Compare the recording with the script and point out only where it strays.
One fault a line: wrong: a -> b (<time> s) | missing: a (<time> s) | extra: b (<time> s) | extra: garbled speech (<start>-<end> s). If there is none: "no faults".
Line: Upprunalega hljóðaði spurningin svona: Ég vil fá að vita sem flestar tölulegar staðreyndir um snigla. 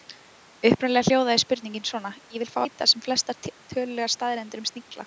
missing: að (2.6 s)